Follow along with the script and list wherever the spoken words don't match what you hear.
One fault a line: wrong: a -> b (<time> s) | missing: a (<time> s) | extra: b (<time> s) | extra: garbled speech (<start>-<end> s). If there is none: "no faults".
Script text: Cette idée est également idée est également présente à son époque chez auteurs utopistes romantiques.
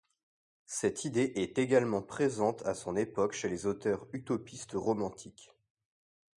missing: idée est également (2.0 s)
extra: les (3.5 s)